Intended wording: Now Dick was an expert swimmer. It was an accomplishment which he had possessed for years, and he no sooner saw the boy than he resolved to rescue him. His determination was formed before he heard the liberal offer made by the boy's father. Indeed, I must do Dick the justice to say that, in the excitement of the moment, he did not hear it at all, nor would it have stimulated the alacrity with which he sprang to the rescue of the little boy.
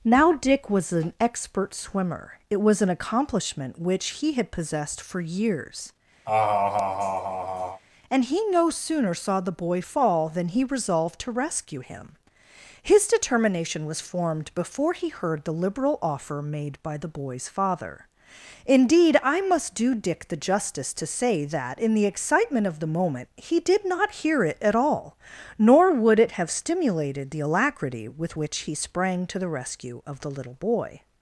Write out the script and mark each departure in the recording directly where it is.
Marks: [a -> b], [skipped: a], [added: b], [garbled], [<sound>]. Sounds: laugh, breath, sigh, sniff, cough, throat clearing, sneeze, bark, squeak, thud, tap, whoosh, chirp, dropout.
Now Dick was an expert swimmer. It was an accomplishment which he had possessed for years, [laugh] and he no sooner saw the boy [added: fall] than he resolved to rescue him. His determination was formed before he heard the liberal offer made by the boy's father. Indeed, I must do Dick the justice to say that, in the excitement of the moment, he did not hear it at all, nor would it have stimulated the alacrity with which he sprang to the rescue of the little boy.